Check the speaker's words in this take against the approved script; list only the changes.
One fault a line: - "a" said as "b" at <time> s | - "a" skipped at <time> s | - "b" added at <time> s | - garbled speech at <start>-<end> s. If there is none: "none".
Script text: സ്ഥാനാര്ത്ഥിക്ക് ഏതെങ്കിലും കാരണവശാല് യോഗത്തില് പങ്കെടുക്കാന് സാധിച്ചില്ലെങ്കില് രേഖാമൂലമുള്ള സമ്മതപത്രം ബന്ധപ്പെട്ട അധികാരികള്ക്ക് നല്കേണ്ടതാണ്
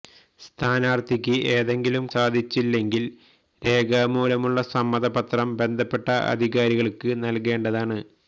- "കാരണവശാല് യോഗത്തില് പങ്കെടുക്കാന്" skipped at 2.0 s